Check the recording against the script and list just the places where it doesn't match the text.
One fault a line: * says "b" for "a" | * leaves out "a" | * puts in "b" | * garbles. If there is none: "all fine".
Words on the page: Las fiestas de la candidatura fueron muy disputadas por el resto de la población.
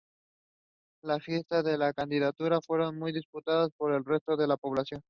all fine